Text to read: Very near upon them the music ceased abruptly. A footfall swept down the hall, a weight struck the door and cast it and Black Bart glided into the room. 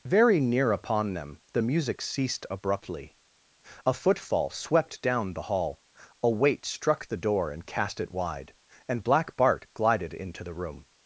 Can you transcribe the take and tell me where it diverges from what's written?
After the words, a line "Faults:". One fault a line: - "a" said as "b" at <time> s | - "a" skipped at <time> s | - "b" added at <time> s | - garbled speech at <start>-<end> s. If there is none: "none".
Very near upon them the music ceased abruptly. A footfall swept down the hall, a weight struck the door and cast it wide, and Black Bart glided into the room.
Faults:
- "wide" added at 8.1 s